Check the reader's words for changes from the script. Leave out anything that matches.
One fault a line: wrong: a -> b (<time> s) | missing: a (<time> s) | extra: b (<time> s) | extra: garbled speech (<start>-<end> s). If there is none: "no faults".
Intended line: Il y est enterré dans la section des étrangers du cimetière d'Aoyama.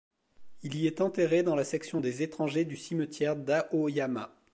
no faults